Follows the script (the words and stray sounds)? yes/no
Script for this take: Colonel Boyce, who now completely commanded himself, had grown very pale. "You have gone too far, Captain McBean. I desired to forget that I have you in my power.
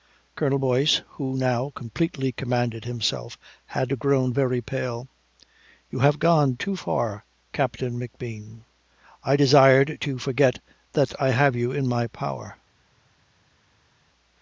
yes